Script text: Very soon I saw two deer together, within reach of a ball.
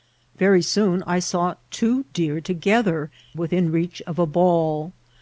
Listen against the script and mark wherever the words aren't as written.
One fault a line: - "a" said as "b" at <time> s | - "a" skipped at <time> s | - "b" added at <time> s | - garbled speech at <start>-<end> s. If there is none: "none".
none